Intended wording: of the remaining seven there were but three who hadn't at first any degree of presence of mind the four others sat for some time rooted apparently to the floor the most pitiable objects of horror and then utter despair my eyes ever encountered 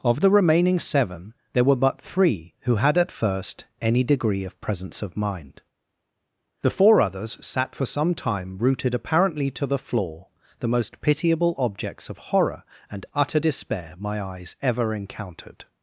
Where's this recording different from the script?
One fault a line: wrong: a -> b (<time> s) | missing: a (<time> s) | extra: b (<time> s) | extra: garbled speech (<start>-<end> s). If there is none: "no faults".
wrong: hadn't -> had (2.8 s)
missing: then (13.1 s)